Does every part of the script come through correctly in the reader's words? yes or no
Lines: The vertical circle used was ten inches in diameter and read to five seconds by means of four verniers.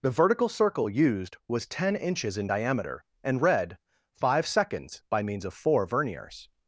no